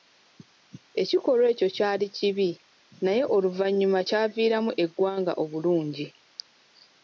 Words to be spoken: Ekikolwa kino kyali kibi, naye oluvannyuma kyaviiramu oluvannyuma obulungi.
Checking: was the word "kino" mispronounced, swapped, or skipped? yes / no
yes